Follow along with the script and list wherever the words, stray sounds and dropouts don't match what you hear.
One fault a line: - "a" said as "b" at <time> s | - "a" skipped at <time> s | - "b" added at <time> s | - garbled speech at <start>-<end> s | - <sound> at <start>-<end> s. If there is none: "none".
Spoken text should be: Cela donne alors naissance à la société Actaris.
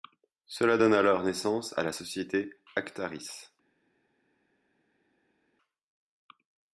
none